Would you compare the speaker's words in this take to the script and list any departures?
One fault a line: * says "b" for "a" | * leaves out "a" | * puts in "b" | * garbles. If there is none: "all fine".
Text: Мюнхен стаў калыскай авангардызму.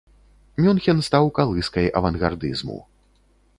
all fine